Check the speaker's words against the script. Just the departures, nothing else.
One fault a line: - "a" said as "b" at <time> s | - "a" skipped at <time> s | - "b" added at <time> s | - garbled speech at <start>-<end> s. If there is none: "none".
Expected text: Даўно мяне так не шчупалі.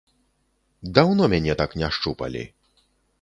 none